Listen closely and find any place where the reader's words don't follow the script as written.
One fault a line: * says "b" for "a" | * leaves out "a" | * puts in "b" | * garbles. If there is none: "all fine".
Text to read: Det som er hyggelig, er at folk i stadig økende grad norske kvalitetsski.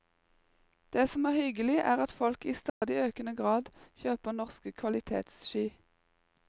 * puts in "kjøper"